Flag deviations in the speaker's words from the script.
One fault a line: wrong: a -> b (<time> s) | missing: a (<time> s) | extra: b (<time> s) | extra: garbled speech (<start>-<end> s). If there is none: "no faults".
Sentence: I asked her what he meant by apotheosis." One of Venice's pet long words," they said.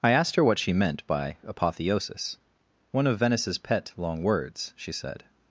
wrong: he -> she (0.6 s)
wrong: they -> she (4.8 s)